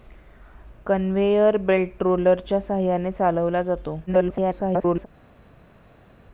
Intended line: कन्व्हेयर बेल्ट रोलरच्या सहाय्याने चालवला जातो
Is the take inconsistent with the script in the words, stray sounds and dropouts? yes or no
yes